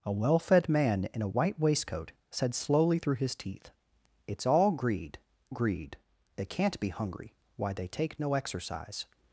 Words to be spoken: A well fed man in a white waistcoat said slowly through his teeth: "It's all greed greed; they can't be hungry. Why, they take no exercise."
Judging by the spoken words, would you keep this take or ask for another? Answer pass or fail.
pass